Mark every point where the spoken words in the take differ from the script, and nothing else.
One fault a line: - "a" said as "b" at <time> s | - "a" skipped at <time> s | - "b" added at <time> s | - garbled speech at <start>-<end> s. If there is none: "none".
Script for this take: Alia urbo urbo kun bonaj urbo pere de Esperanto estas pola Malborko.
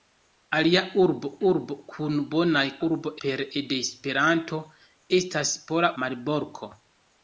none